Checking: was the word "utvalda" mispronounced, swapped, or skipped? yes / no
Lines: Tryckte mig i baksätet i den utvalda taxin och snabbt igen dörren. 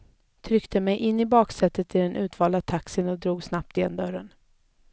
no